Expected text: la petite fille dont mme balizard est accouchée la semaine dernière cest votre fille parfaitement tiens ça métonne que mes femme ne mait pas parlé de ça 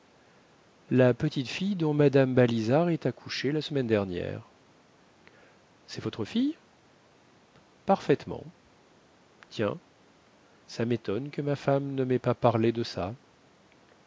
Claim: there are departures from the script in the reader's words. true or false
true